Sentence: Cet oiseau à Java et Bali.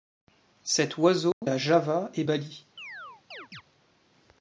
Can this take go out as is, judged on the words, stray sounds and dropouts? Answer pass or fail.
fail